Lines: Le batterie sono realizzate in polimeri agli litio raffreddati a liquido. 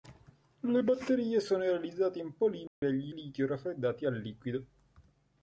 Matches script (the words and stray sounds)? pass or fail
fail